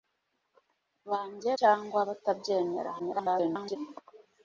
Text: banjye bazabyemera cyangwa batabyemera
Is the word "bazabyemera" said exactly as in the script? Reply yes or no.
no